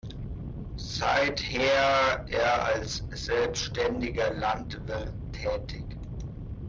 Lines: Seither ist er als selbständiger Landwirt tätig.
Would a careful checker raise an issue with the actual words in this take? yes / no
yes